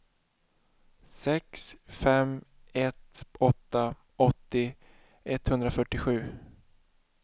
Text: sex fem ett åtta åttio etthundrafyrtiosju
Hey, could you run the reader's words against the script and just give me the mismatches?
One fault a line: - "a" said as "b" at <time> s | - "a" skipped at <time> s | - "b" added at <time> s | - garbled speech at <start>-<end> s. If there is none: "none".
none